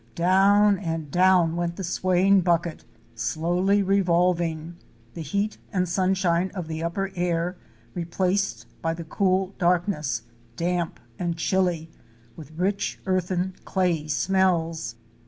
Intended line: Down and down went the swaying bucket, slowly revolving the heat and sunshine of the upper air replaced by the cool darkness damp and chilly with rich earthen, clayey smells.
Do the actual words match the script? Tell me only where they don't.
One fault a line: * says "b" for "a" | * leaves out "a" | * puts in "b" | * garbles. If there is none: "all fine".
all fine